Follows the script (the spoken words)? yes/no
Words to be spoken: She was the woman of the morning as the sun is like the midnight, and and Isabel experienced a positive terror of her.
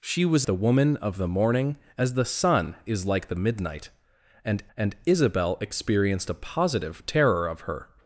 yes